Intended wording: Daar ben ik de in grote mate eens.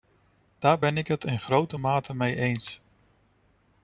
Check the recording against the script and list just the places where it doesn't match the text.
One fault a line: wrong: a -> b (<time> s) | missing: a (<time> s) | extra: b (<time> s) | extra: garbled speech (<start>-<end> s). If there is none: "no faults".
wrong: de -> het (1.1 s)
extra: mee (2.1 s)